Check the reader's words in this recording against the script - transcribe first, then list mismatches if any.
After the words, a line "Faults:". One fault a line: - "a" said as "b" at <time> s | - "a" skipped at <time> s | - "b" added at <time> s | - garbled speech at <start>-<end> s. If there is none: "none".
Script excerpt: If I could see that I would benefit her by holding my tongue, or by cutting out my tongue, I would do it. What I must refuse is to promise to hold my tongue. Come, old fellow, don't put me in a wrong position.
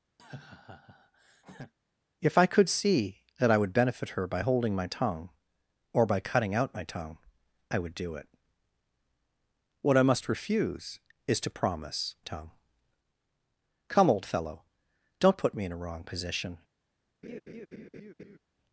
If I could see that I would benefit her by holding my tongue, or by cutting out my tongue, I would do it. What I must refuse is to promise tongue. Come, old fellow, don't put me in a wrong position.
Faults:
- "to hold my" skipped at 12.2 s